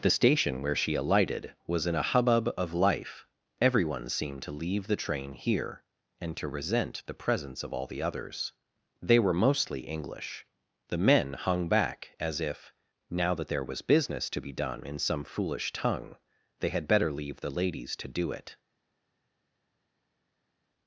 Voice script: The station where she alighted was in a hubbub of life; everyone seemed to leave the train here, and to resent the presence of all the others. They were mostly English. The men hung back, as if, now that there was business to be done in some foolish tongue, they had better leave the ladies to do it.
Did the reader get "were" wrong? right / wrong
right